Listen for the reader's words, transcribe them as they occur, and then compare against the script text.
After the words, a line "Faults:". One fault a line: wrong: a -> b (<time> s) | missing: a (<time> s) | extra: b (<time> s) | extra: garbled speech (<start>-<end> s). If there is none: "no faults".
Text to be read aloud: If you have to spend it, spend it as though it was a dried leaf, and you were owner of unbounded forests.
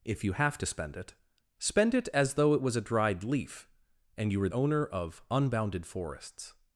If you have to spend it, spend it as though it was a dried leaf, and you were owner of unbounded forests.
Faults:
no faults